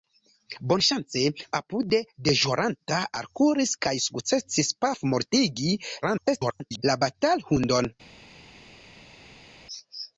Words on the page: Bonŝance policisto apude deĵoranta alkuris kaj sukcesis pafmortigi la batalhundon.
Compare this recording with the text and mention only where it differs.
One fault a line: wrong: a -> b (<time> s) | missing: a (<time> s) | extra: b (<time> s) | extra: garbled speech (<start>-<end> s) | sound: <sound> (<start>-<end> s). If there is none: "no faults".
missing: policisto (1.2 s)
extra: garbled speech (6.0-6.8 s)